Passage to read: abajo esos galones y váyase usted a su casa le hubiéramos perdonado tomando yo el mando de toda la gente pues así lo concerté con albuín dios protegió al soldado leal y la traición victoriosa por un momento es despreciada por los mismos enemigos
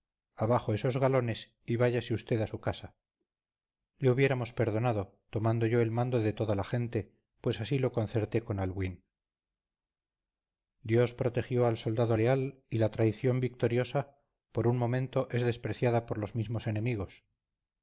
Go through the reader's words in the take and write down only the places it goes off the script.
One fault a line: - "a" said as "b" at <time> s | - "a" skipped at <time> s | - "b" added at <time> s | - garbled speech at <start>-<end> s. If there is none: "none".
none